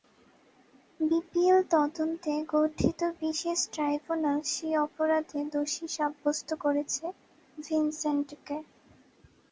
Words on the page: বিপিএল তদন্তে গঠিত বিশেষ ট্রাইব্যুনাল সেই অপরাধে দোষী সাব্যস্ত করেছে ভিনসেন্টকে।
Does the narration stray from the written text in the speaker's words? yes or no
no